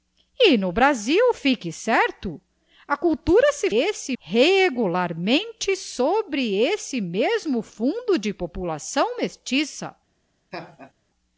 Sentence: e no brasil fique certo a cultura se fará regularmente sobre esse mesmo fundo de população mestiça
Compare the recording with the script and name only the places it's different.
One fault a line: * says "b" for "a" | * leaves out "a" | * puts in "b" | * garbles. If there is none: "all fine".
* says "esse" for "fará"